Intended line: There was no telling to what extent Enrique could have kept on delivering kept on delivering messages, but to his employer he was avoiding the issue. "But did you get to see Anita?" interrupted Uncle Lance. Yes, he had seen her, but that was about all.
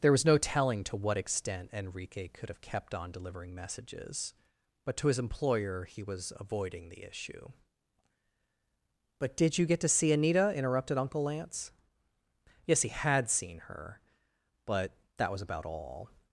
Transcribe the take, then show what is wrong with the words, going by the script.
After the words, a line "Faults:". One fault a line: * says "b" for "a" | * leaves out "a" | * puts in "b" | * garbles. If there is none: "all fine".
There was no telling to what extent Enrique could have kept on delivering messages, but to his employer he was avoiding the issue. "But did you get to see Anita?" interrupted Uncle Lance. Yes, he had seen her, but that was about all.
Faults:
* leaves out "kept on delivering"